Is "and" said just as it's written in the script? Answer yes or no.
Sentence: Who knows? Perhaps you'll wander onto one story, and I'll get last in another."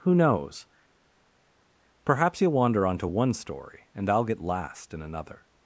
yes